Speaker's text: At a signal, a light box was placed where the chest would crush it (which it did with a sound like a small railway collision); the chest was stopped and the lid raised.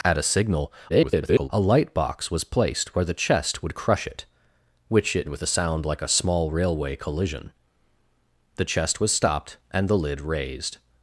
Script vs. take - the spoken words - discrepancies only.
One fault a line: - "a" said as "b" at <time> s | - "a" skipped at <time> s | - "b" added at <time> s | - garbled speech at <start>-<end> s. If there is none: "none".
- garbled speech at 0.9-1.5 s
- "did" skipped at 5.3 s